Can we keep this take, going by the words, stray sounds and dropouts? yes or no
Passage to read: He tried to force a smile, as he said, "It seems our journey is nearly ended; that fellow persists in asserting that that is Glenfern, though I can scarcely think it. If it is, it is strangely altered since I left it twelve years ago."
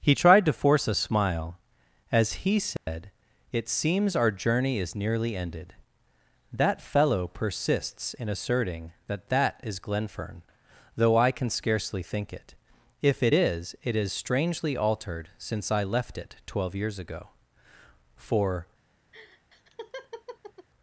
no